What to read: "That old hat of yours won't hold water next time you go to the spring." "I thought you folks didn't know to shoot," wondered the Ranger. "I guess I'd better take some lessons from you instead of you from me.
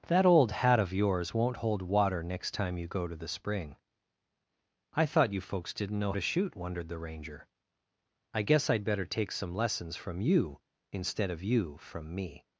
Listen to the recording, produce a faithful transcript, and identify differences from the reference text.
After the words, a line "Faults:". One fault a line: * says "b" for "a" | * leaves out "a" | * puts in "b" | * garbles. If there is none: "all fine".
"That old hat of yours won't hold water next time you go to the spring." "I thought you folks didn't know to shoot," wondered the Ranger. "I guess I'd better take some lessons from you instead of you from me.
Faults:
all fine